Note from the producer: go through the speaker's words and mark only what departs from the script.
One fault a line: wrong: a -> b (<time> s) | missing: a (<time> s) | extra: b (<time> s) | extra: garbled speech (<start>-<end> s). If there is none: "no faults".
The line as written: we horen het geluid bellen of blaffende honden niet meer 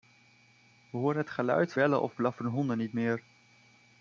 no faults